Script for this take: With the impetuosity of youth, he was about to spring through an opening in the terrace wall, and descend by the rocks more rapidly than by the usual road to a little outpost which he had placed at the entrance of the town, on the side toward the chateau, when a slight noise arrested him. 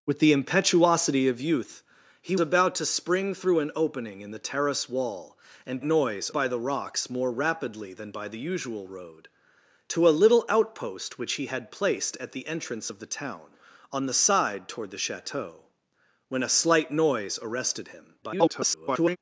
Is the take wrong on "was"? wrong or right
wrong